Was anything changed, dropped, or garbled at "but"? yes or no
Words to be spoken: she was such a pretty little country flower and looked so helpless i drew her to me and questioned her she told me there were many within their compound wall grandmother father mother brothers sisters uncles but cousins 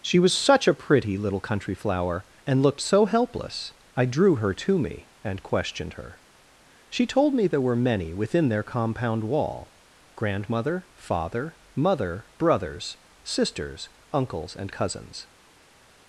yes